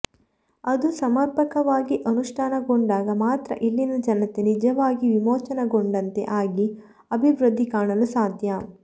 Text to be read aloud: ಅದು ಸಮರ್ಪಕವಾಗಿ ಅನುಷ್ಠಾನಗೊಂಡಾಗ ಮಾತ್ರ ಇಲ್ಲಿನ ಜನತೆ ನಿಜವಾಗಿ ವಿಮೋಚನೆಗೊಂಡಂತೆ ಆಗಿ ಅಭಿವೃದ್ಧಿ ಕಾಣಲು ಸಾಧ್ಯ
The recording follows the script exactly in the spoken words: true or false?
true